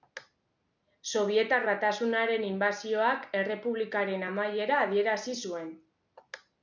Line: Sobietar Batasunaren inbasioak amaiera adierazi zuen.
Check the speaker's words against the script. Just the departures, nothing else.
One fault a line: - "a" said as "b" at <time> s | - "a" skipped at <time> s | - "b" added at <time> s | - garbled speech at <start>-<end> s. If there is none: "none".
- "errepublikaren" added at 3.4 s